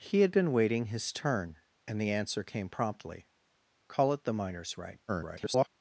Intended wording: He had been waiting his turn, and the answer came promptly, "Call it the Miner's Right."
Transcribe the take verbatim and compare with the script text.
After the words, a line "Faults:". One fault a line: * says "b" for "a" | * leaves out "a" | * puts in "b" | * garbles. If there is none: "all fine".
He had been waiting his turn, and the answer came promptly, "Call it the Miner's Right." [garbled]
Faults:
* garbles